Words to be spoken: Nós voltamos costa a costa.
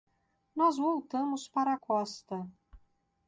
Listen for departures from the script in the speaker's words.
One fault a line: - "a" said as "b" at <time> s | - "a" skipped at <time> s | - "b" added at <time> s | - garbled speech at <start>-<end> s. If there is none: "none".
- "costa" said as "para" at 1.5 s